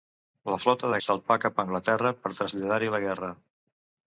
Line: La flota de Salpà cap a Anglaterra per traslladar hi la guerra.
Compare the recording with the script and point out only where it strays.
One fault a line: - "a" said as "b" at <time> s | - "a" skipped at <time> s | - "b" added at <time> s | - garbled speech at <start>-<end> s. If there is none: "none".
none